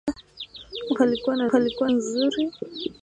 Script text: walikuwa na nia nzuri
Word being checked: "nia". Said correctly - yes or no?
no